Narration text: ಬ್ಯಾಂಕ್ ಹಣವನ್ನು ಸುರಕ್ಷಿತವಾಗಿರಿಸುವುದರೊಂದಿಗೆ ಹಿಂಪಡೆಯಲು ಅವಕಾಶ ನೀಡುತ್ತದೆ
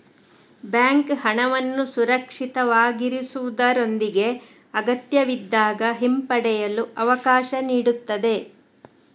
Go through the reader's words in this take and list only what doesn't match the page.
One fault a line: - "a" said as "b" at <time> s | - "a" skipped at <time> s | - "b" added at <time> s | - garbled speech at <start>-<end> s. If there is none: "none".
- "ಅಗತ್ಯವಿದ್ದಾಗ" added at 4.7 s